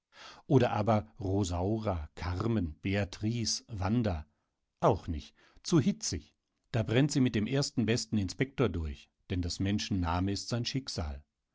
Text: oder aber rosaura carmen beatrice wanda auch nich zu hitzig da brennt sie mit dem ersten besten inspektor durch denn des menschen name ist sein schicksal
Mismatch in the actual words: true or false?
false